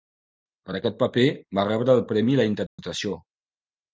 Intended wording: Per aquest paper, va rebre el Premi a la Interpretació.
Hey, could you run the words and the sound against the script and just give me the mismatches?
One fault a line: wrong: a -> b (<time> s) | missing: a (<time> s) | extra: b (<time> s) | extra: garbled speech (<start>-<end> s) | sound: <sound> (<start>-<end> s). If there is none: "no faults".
sound: dropout (2.7-2.8 s)